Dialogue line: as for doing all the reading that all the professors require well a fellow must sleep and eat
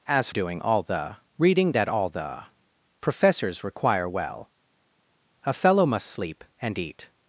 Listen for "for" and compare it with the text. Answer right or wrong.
wrong